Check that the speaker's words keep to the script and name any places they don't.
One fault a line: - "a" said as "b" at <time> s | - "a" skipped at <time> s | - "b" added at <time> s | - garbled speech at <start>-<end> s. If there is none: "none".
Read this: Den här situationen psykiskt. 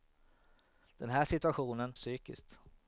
none